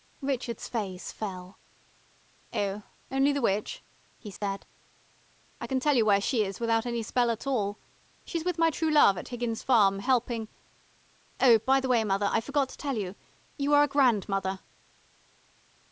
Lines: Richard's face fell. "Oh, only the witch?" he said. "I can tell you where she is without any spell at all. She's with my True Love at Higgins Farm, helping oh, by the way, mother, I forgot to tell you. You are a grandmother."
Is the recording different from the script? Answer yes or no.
no